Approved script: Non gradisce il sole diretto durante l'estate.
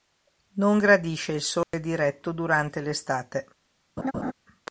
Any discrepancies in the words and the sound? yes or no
yes